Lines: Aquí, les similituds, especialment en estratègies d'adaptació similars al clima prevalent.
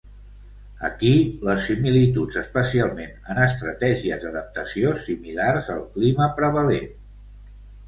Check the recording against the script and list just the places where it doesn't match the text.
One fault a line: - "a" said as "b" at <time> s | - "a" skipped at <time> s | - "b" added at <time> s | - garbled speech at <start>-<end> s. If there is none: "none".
none